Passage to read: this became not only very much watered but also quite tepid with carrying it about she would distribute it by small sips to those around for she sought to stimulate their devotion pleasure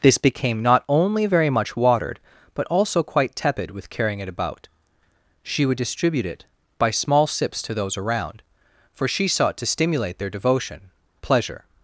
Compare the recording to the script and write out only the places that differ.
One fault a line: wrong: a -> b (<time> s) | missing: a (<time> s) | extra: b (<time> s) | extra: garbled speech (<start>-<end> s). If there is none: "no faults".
no faults